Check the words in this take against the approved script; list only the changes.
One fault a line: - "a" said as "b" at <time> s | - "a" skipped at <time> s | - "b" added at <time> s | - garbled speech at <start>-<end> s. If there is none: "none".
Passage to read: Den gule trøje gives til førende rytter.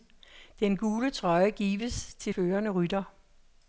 none